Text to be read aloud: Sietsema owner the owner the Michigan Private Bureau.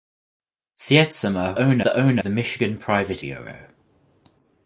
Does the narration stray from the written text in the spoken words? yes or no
no